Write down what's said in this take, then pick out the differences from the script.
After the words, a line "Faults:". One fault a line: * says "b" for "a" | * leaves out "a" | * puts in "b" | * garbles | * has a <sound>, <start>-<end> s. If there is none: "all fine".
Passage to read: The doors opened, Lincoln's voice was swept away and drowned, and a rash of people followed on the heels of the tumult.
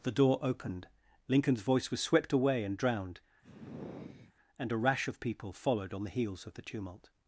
The door opened, Lincoln's voice was swept away and drowned, and a rash of people followed on the heels of the tumult.
Faults:
* says "door" for "doors"
* has a sigh, 3.4-4.3 s